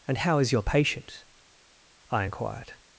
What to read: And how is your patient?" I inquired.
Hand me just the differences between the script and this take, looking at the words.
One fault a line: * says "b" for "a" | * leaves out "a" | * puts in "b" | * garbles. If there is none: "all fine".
all fine